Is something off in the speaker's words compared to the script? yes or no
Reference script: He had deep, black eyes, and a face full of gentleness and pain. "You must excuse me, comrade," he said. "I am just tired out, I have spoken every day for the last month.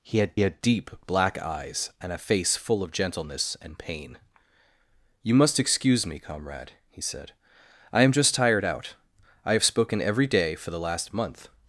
yes